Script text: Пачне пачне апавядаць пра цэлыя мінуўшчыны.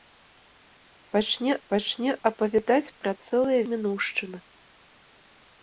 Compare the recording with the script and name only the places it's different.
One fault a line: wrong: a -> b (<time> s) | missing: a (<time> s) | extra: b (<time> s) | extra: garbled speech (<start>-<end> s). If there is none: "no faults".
no faults